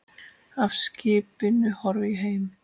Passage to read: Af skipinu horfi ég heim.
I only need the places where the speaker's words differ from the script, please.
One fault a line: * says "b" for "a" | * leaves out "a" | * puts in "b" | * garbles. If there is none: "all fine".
all fine